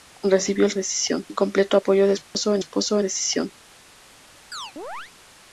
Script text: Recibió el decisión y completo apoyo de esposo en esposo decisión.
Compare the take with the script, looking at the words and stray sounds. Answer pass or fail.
fail